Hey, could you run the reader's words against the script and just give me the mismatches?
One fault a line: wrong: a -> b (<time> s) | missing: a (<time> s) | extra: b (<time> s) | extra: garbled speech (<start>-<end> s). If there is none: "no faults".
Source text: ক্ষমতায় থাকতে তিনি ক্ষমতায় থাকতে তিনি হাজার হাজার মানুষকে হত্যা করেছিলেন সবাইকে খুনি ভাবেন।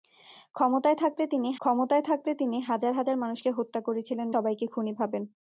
no faults